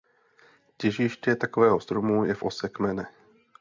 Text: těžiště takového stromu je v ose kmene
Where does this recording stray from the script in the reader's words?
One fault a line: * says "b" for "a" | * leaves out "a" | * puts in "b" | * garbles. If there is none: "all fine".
all fine